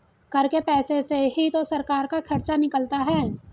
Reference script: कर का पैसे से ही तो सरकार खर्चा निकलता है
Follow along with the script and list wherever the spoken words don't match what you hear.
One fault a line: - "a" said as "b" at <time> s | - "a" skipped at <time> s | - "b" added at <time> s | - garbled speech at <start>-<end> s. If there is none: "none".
- "का" said as "के" at 0.4 s
- "का" added at 2.1 s